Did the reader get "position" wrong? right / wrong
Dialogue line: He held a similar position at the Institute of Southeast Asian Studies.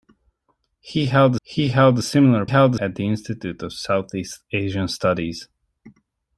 wrong